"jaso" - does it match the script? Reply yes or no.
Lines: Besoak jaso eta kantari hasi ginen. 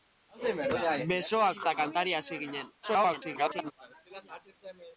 no